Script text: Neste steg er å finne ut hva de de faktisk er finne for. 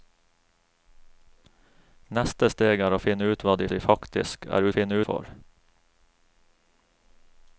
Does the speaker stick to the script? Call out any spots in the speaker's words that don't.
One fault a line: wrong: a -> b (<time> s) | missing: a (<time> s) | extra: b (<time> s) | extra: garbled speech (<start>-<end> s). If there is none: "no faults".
no faults